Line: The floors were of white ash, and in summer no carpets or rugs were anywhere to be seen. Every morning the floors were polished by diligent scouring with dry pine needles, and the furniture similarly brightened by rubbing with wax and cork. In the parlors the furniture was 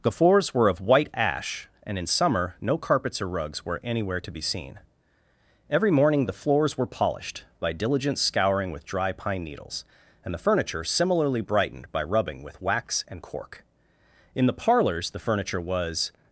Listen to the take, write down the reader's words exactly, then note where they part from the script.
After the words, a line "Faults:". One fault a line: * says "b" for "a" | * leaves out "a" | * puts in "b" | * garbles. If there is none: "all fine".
The floors were of white ash, and in summer no carpets or rugs were anywhere to be seen. Every morning the floors were polished by diligent scouring with dry pine needles, and the furniture similarly brightened by rubbing with wax and cork. In the parlors the furniture was
Faults:
all fine